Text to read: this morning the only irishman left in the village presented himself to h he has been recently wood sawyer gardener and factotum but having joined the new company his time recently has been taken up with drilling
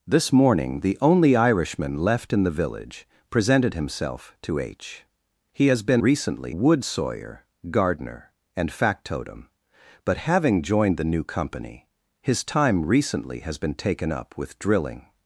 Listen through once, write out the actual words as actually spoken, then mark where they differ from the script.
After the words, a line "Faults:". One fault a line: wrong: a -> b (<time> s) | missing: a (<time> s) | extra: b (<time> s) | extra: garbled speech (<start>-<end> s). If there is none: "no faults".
this morning the only irishman left in the village presented himself to h he has been recently wood sawyer gardener and factotum but having joined the new company his time recently has been taken up with drilling
Faults:
no faults